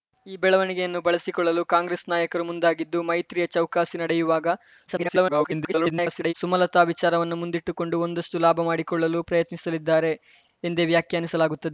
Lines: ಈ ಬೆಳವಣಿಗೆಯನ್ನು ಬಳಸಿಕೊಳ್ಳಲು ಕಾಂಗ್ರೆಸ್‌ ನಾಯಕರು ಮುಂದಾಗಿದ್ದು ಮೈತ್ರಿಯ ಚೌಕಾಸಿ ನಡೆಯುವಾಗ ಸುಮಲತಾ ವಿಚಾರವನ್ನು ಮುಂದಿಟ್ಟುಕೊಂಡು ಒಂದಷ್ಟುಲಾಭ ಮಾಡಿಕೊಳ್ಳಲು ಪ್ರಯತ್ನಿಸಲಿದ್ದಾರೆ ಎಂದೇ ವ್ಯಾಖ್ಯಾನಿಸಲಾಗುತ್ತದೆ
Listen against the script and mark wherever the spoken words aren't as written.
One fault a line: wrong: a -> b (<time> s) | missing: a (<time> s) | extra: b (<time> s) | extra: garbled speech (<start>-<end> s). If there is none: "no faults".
extra: garbled speech (4.9-6.3 s)